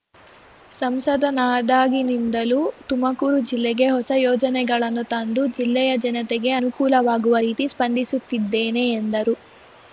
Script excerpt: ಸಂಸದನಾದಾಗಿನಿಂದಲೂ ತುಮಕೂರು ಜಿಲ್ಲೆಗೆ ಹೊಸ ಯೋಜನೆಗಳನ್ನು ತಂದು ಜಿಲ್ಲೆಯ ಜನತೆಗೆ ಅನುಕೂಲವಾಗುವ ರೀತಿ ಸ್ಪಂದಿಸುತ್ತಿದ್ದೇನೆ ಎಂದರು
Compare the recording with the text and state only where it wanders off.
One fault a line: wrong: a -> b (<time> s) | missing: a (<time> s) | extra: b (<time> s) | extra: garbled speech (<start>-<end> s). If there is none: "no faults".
no faults